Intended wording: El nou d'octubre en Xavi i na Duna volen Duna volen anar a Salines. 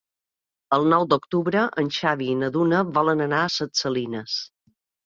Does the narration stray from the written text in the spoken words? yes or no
yes